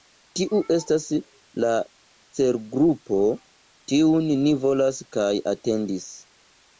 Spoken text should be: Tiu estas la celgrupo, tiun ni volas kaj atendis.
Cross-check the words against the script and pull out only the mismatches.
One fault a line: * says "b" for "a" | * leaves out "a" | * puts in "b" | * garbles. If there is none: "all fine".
all fine